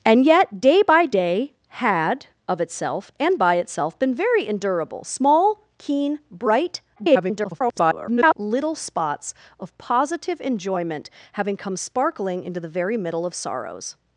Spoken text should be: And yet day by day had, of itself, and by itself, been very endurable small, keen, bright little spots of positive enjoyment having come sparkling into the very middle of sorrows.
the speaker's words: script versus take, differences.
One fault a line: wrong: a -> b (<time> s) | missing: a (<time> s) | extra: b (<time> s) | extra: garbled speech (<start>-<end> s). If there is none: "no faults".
extra: garbled speech (7.0-8.3 s)